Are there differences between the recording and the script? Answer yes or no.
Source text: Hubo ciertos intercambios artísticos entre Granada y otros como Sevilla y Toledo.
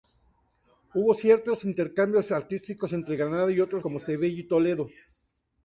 no